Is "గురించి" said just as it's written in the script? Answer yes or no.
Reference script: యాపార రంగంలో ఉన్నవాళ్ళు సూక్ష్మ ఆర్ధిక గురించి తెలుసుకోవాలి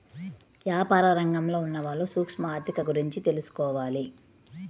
yes